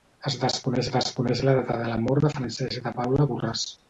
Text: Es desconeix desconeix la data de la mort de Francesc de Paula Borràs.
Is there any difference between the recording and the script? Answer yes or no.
no